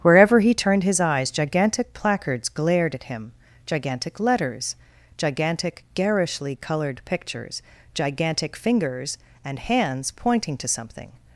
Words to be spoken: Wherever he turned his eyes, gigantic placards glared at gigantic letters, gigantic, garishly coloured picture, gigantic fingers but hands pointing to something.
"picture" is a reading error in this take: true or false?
true